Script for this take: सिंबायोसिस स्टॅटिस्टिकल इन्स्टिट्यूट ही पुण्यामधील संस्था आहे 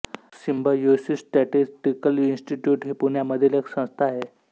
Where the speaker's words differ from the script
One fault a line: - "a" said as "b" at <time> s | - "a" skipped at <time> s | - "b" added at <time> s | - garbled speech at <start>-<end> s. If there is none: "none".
- "एक" added at 3.5 s